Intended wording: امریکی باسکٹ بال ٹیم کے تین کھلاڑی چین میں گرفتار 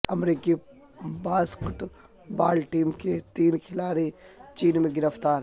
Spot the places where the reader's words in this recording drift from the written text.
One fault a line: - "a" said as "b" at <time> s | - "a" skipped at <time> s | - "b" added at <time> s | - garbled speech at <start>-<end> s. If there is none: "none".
none